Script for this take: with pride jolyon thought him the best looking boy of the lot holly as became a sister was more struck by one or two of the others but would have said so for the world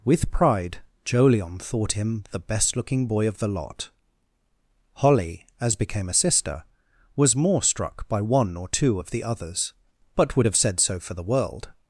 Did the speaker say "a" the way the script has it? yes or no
yes